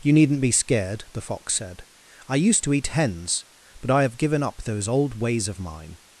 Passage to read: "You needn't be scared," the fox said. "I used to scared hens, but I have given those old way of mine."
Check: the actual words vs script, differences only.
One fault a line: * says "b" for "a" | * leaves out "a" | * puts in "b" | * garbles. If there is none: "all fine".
* says "eat" for "scared"
* puts in "up"
* says "ways" for "way"